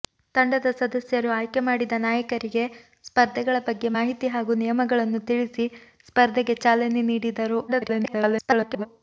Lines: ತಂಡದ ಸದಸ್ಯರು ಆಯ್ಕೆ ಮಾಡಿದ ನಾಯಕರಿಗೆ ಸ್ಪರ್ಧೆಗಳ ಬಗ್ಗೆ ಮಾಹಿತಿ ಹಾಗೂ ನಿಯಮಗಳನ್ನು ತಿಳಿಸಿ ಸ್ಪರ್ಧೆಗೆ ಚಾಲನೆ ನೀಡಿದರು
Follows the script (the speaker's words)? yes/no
no